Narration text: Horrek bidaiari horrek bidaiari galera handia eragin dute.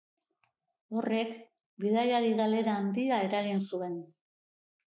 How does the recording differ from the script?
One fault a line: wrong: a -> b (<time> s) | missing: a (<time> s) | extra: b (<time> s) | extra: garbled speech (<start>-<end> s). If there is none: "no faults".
missing: horrek bidaiari (2.3 s)
wrong: dute -> zuen (3.7 s)